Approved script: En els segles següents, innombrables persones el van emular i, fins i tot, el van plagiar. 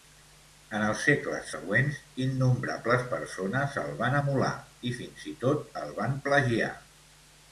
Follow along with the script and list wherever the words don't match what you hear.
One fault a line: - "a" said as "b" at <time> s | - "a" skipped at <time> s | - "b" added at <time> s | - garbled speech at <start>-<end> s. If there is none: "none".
none